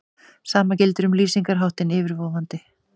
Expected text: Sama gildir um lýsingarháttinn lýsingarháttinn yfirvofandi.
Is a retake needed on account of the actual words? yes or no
yes